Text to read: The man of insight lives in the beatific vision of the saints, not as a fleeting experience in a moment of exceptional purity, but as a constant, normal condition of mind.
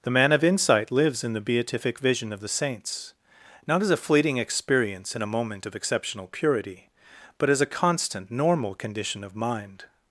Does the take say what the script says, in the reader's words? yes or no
yes